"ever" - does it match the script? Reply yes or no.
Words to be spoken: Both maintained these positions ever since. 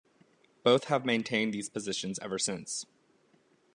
yes